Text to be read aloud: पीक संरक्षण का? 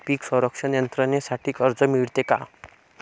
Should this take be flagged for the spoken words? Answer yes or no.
yes